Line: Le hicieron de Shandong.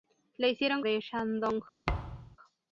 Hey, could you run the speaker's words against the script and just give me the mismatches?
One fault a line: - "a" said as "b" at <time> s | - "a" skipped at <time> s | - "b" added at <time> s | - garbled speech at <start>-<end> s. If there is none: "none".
none